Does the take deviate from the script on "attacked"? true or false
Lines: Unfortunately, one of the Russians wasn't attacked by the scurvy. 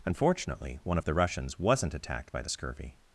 false